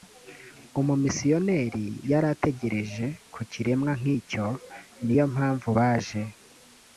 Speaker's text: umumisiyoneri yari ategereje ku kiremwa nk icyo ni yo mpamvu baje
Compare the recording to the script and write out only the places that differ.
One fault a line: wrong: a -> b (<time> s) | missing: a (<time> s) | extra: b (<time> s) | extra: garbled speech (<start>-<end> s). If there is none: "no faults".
no faults